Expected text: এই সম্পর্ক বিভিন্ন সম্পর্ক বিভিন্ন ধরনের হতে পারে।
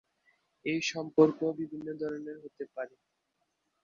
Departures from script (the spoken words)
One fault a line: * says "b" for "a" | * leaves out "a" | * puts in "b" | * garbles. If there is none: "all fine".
* leaves out "সম্পর্ক বিভিন্ন"